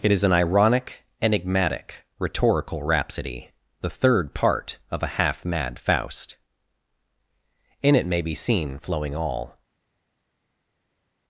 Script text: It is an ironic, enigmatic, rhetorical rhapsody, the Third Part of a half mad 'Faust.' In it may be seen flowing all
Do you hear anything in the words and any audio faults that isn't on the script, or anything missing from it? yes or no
no